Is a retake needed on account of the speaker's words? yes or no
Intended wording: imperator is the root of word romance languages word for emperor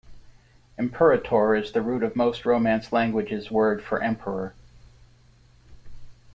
yes